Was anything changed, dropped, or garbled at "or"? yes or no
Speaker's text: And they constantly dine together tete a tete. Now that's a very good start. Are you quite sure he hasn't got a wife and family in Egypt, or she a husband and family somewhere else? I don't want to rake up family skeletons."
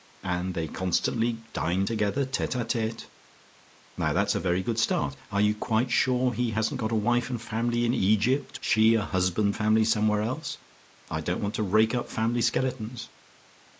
yes